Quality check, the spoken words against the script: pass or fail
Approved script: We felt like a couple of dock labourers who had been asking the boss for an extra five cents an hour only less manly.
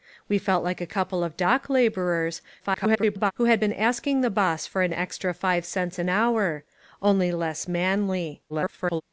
fail